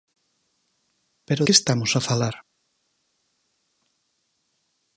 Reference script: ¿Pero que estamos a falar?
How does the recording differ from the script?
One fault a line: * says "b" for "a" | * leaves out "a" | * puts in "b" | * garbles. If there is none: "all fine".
all fine